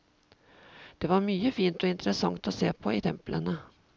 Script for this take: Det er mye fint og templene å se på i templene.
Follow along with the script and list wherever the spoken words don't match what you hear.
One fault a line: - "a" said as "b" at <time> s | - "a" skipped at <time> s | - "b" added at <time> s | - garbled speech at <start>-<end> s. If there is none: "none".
- "er" said as "var" at 1.1 s
- "templene" said as "interessant" at 1.9 s